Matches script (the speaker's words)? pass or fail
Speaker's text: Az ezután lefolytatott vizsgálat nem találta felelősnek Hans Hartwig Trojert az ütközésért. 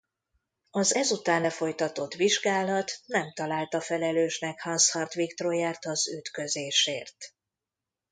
pass